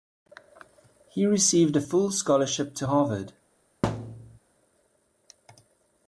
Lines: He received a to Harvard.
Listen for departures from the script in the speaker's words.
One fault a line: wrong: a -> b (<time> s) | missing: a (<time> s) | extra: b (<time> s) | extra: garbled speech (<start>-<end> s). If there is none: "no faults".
extra: full scholarship (1.8 s)